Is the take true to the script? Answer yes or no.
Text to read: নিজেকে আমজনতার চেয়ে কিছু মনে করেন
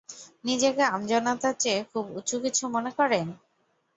no